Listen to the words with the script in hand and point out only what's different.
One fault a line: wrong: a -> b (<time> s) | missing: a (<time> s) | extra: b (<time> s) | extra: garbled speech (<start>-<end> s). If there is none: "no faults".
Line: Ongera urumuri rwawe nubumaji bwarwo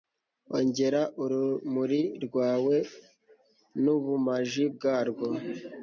no faults